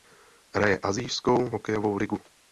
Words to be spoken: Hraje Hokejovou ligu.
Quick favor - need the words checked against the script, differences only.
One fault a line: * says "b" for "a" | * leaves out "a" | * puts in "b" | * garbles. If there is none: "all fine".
* puts in "Asijskou"